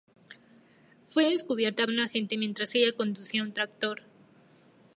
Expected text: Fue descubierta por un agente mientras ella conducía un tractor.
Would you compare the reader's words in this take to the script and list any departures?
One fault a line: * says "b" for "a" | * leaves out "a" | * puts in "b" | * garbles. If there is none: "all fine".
* leaves out "por"